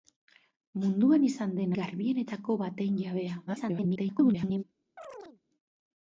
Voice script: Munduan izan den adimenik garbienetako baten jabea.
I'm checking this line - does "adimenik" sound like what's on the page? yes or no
no